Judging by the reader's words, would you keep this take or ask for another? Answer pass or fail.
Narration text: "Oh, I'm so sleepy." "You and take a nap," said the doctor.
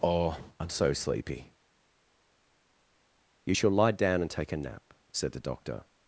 fail